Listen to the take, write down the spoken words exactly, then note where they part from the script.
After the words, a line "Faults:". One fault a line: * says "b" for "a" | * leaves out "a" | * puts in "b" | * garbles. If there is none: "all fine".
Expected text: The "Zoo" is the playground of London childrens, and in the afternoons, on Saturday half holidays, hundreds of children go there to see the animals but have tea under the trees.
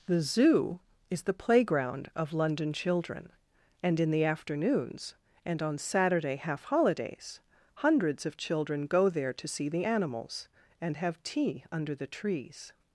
The "Zoo" is the playground of London children, and in the afternoons, and on Saturday half holidays, hundreds of children go there to see the animals and have tea under the trees.
Faults:
* says "children" for "childrens"
* puts in "and"
* says "and" for "but"